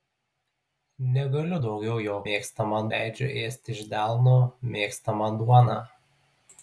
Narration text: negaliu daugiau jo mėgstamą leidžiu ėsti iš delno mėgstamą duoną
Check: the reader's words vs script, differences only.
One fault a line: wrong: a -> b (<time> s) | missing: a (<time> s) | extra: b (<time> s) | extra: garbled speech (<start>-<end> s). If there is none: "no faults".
no faults